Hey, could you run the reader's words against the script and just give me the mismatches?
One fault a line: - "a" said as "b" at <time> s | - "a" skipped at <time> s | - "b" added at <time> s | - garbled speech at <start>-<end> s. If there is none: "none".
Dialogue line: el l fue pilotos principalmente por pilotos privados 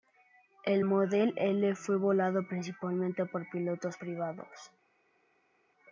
- "model" added at 0.8 s
- "pilotos" said as "volado" at 2.0 s